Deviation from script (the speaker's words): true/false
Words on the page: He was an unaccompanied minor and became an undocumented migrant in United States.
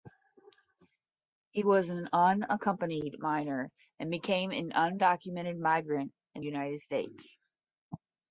false